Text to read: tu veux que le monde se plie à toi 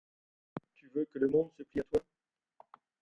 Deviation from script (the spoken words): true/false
false